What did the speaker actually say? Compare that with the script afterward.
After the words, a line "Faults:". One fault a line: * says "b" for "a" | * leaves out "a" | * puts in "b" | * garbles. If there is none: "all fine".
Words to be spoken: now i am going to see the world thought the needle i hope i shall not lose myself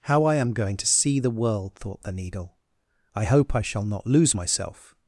how i am going to see the world thought the needle i hope i shall not lose myself
Faults:
* says "how" for "now"